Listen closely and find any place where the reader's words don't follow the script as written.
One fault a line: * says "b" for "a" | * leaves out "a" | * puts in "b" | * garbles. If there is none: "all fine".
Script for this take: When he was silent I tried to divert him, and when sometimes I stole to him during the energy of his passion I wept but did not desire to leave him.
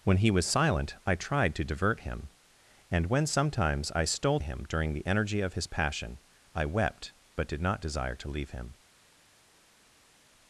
* leaves out "to"